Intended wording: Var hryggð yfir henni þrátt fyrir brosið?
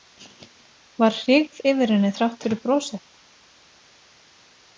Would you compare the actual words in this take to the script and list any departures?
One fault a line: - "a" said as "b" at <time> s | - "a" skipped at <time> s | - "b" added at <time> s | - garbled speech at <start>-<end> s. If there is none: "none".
none